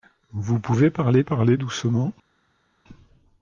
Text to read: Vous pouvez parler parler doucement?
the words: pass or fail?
pass